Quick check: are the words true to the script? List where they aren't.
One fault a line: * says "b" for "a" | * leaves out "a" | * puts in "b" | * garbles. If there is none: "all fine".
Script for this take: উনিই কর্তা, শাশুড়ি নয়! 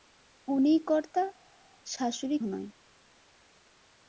all fine